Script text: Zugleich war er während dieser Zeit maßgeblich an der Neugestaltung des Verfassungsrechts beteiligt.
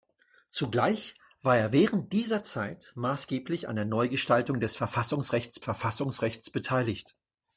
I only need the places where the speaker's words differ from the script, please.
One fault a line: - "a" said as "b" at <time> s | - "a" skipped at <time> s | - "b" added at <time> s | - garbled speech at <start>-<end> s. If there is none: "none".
- "Verfassungsrechts" added at 5.6 s